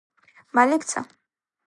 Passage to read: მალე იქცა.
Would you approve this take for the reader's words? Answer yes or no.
yes